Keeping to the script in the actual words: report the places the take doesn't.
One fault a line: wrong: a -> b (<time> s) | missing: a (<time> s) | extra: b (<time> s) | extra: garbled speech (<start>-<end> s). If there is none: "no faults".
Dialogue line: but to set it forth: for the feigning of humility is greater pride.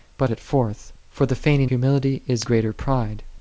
missing: to set (0.3 s)
missing: of (1.7 s)